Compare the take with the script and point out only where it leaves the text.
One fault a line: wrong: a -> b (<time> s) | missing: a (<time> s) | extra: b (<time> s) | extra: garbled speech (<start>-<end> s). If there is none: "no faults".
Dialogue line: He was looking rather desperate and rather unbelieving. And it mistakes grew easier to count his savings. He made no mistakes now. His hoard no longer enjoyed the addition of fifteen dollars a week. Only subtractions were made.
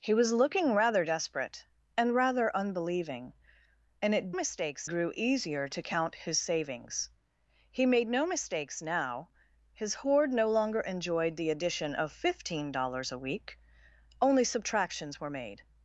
no faults